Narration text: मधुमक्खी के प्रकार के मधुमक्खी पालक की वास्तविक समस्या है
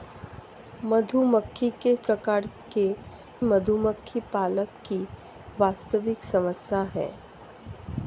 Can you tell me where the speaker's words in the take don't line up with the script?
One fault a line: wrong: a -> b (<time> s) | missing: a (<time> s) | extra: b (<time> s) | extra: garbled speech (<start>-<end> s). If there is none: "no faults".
no faults